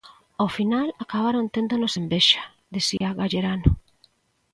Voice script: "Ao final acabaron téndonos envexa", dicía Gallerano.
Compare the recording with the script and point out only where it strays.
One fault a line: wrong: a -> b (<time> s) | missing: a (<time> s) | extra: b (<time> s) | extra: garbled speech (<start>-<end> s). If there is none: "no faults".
no faults